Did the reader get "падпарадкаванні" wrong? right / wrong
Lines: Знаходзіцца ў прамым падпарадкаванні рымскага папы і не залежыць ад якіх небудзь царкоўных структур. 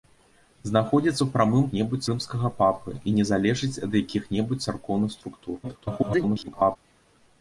wrong